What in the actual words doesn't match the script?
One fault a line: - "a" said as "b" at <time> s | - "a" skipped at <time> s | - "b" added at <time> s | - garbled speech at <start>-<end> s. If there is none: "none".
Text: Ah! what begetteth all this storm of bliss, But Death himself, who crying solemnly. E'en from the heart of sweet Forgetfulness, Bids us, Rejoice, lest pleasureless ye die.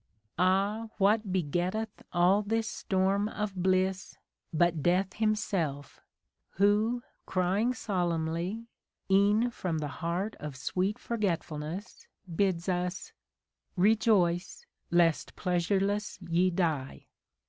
none